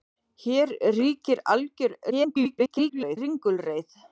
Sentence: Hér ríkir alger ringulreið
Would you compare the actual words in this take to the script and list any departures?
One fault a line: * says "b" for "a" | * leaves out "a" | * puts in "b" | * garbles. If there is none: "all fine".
* garbles